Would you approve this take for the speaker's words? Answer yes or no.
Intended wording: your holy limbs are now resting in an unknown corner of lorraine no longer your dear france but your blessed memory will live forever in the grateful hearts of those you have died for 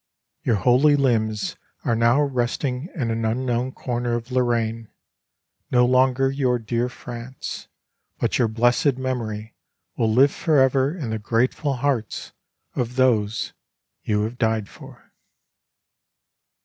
yes